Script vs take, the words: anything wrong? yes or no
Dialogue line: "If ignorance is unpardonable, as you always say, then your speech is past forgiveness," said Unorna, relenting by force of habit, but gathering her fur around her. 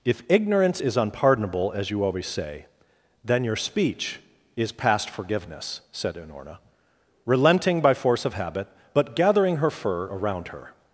no